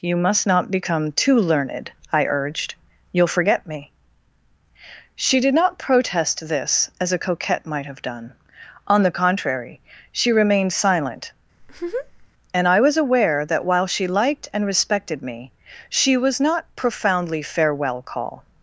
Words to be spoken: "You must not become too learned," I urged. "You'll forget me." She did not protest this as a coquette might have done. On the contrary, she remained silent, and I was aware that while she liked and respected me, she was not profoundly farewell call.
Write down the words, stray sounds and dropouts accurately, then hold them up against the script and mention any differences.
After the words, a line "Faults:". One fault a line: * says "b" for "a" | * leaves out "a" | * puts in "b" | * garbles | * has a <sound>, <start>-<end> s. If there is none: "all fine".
"You must not become too learned," I urged. "You'll forget me." She did not protest this as a coquette might have done. On the contrary, she remained silent, and I was aware that while she liked and respected me, she was not profoundly farewell call.
Faults:
* has a laugh, 11.6-12.3 s